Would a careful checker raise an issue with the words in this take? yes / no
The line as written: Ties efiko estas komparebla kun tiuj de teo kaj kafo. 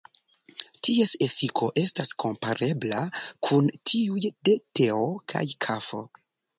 no